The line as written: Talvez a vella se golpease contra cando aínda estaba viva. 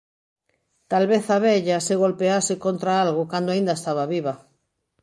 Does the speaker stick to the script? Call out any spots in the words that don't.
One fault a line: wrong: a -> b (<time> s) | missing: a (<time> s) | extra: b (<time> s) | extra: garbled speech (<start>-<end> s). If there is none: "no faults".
extra: algo (3.0 s)